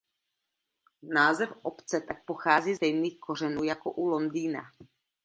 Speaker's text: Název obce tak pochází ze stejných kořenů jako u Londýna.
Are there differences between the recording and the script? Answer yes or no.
no